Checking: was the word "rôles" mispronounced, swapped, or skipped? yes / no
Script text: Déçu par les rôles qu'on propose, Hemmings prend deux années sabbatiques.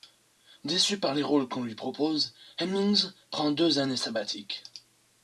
no